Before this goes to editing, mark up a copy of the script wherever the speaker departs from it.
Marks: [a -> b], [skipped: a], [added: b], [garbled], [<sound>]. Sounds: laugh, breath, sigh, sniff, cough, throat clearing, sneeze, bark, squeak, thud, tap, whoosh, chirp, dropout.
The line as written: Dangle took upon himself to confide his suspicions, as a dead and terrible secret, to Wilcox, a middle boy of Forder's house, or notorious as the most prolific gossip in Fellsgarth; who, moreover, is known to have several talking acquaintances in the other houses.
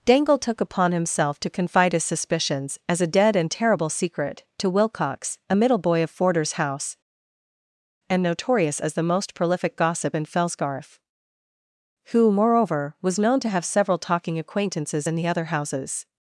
Dangle took upon himself to confide his suspicions, as a dead and terrible secret, to Wilcox, a middle boy of Forder's house, [or -> and] notorious as the most prolific gossip in Fellsgarth; who, moreover, [is -> was] known to have several talking acquaintances in the other houses.